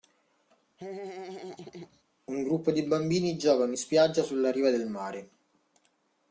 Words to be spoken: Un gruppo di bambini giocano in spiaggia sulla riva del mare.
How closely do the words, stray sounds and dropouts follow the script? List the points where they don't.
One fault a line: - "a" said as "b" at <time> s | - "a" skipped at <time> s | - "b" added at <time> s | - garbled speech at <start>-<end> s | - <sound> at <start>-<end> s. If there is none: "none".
- laugh at 0.8-2.0 s